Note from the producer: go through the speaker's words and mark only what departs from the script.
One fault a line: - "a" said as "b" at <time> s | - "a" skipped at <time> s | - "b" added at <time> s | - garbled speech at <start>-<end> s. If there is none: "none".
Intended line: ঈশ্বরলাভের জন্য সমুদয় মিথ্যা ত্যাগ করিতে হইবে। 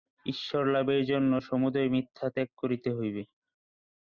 none